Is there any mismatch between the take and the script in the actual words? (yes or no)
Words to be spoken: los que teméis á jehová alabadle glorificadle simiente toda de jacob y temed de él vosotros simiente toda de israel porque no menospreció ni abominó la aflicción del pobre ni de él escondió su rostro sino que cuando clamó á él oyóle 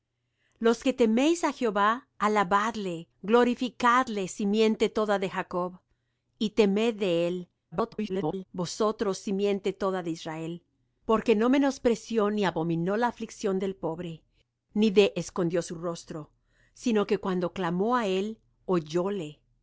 yes